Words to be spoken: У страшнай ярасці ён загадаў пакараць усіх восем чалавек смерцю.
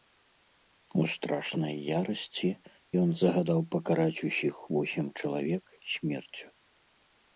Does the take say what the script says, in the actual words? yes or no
yes